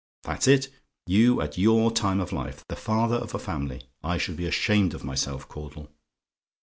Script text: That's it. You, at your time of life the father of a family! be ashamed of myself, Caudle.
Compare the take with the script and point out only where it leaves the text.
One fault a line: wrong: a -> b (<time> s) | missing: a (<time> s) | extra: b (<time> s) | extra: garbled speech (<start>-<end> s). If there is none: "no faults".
extra: I should (4.0 s)